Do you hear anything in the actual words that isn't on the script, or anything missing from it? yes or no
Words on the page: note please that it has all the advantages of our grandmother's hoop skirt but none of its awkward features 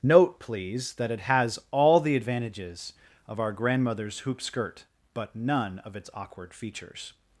no